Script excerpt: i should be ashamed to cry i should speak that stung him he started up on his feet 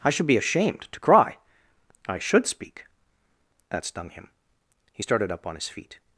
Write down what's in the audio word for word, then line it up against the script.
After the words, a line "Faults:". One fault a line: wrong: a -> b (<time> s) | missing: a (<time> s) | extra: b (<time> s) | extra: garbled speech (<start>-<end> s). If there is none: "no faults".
i should be ashamed to cry i should speak that stung him he started up on his feet
Faults:
no faults